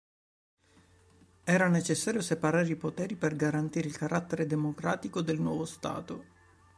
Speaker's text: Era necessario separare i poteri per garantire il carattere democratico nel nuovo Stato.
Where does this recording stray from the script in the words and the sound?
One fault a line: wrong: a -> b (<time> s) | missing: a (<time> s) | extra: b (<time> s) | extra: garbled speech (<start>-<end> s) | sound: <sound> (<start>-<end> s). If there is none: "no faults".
wrong: nel -> del (5.2 s)